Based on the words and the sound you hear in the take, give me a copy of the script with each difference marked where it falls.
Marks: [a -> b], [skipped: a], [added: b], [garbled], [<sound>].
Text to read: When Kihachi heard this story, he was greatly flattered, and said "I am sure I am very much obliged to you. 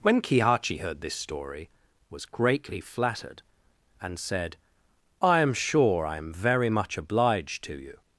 When Kihachi heard this story, [skipped: he] was greatly flattered, and said "I am sure I am very much obliged to you.